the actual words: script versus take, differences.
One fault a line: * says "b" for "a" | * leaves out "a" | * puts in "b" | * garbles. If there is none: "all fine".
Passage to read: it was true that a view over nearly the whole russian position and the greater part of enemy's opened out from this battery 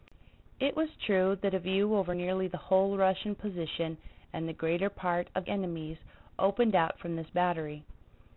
all fine